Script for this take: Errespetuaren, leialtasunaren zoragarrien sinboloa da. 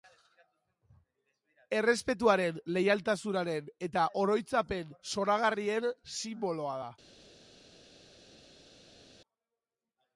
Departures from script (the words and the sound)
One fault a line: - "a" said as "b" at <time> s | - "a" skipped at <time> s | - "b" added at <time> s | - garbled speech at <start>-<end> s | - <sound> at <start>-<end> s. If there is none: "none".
- "eta oroitzapen" added at 3.9 s